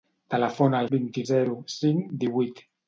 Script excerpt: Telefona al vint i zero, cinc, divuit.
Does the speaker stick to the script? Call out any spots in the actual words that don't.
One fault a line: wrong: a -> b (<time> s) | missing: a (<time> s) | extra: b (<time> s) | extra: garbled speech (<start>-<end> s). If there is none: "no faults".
no faults